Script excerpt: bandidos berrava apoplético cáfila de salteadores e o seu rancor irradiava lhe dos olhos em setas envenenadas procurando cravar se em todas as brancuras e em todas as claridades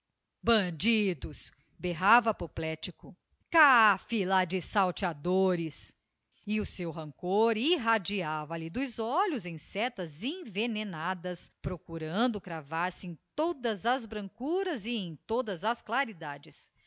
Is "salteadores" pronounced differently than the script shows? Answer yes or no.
no